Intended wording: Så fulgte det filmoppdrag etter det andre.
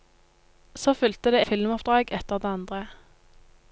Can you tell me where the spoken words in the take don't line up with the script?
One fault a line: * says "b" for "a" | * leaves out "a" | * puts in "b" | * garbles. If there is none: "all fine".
all fine